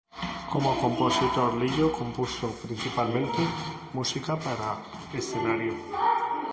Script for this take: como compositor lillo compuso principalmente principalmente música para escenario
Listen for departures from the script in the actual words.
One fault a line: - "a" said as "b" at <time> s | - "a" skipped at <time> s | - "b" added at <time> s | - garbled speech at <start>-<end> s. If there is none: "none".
- "principalmente" skipped at 3.4 s